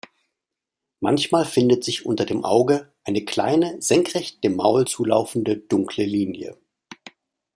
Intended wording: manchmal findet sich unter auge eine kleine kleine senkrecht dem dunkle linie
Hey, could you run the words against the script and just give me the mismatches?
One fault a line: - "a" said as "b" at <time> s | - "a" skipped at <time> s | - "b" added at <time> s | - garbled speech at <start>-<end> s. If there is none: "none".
- "dem" added at 2.2 s
- "kleine" skipped at 3.8 s
- "maul zulaufende" added at 4.5 s